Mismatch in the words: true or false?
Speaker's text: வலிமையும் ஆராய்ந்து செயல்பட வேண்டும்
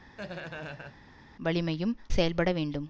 true